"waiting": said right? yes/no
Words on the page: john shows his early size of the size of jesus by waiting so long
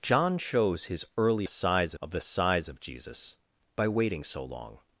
yes